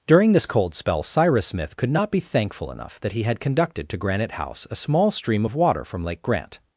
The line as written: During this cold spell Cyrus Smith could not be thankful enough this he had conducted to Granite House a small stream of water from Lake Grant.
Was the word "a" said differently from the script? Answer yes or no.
no